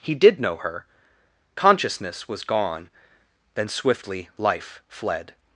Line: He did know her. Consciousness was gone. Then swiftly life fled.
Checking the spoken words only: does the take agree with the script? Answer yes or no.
yes